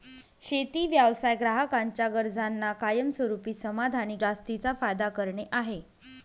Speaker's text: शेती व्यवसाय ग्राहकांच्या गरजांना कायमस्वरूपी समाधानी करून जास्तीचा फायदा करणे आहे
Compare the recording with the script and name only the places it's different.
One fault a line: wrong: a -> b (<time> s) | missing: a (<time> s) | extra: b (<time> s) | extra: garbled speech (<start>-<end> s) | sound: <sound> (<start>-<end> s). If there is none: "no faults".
missing: करून (4.2 s)